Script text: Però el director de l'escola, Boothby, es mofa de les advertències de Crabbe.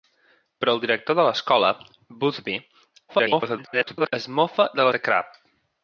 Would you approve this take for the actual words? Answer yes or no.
no